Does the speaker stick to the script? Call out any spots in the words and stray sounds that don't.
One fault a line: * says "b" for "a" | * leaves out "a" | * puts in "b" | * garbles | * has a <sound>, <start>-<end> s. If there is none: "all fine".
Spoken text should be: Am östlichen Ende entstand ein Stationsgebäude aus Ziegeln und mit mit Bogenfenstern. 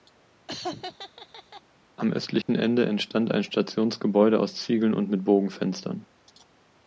* has a laugh, 0.5-1.6 s
* has a dropout, 2.4-2.5 s
* leaves out "mit"